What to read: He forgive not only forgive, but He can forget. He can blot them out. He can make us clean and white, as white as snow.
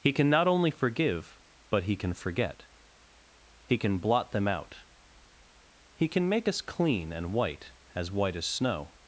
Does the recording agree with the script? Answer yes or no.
no